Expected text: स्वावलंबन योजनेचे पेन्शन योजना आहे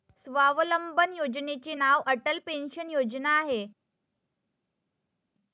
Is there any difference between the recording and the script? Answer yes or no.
yes